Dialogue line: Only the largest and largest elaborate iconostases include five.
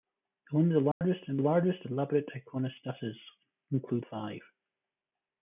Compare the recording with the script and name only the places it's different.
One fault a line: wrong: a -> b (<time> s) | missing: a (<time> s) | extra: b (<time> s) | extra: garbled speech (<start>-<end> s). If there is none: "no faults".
no faults